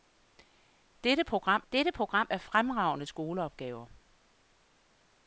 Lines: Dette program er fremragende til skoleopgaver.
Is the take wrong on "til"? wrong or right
wrong